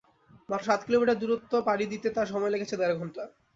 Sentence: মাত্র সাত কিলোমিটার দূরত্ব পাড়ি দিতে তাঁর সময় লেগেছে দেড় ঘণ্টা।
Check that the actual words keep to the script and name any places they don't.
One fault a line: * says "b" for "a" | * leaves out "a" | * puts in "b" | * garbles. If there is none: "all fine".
all fine